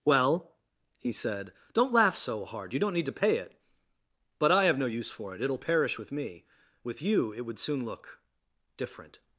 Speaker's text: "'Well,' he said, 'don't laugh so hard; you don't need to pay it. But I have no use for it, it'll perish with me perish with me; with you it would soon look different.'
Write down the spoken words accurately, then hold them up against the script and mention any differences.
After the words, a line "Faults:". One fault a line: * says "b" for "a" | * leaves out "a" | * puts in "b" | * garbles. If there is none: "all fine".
"'Well,' he said, 'don't laugh so hard; you don't need to pay it. But I have no use for it, it'll perish with me; with you it would soon look different.'
Faults:
* leaves out "perish with me"